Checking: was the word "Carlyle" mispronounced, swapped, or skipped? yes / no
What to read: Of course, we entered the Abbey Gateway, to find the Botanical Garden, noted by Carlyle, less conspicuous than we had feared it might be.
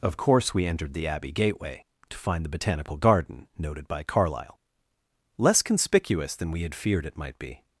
no